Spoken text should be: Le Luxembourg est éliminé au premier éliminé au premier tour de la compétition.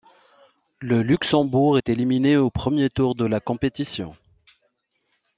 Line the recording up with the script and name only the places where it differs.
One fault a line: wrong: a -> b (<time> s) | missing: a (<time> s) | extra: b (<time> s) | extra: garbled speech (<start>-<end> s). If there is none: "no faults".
missing: éliminé au premier (2.9 s)